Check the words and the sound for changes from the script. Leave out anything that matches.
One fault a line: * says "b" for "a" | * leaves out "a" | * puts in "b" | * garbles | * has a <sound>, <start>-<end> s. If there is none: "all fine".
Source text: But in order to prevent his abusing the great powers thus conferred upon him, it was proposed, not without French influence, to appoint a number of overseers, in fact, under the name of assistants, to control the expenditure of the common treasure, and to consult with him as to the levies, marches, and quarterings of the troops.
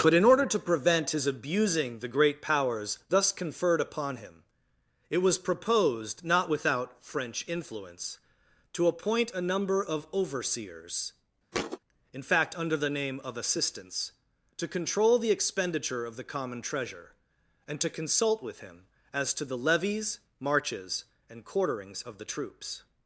* has a thud, 11.5-11.8 s